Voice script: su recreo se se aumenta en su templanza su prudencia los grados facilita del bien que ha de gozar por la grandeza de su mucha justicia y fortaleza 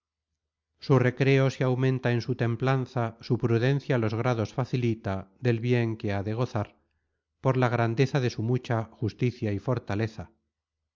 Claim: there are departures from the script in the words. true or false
true